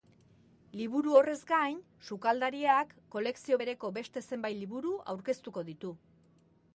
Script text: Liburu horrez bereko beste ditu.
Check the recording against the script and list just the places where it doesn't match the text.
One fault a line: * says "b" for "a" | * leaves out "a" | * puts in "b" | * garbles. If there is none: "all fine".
* puts in "gain sukaldariak kolekzio"
* puts in "zenbait liburu aurkeztuko"